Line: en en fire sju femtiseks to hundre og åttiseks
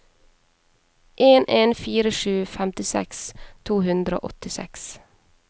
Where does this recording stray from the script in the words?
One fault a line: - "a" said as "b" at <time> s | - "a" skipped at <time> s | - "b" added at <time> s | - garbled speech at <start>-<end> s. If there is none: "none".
none